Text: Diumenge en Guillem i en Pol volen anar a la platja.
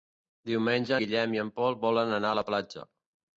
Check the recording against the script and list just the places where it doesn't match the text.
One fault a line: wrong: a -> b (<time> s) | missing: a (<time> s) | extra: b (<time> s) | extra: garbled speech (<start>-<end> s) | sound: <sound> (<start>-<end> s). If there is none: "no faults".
missing: en (0.9 s)